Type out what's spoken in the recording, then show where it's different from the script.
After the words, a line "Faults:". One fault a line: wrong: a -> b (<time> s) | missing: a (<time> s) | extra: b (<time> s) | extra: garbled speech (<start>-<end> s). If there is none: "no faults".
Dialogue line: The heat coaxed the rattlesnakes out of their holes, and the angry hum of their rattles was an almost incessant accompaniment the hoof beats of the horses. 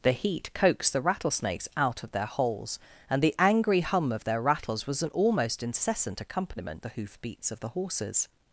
The heat coaxed the rattlesnakes out of their holes, and the angry hum of their rattles was an almost incessant accompaniment the hoof beats of the horses.
Faults:
no faults